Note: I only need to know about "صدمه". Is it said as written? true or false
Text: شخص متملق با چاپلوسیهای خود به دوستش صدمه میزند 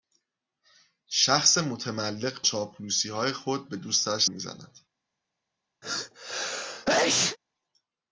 false